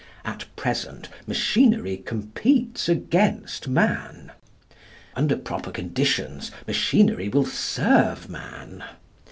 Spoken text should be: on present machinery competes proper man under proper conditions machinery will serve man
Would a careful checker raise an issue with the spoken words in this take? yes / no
yes